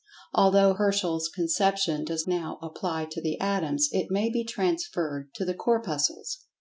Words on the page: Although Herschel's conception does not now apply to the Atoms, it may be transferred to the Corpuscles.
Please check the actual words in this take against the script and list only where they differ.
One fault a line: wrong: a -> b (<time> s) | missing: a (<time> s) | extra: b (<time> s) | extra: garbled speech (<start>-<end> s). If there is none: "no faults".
missing: not (2.2 s)